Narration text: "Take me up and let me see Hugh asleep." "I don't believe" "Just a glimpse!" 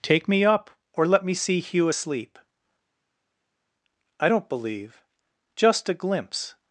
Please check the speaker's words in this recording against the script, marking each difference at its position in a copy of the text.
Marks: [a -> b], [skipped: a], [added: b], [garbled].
"Take me up [and -> or] let me see Hugh asleep." "I don't believe" "Just a glimpse!"